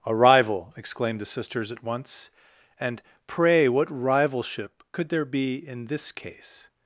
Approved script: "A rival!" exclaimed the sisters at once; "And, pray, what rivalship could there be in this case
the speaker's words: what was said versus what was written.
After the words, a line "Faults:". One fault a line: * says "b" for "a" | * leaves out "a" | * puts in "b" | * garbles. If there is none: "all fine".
"A rival!" exclaimed the sisters at once; "And, pray, what rivalship could there be in this case
Faults:
all fine